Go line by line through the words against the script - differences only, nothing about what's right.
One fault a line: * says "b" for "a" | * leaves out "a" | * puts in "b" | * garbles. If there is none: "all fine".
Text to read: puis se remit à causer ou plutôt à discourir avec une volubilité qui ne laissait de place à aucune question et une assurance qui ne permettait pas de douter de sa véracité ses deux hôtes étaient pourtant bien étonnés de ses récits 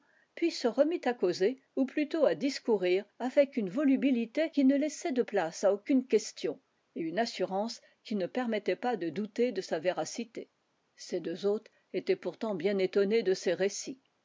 all fine